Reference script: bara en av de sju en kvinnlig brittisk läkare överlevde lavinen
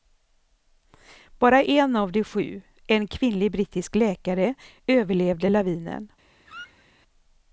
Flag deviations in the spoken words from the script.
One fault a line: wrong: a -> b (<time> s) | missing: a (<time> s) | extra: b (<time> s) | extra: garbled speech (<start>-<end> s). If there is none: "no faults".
no faults